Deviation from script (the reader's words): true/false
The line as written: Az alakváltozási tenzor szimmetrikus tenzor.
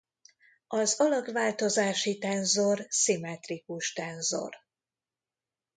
false